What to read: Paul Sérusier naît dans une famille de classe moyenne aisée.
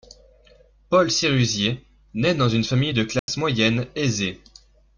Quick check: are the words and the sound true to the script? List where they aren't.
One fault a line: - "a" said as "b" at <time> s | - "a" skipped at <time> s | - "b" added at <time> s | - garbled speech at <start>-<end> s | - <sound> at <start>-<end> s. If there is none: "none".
- dropout at 3.2-3.3 s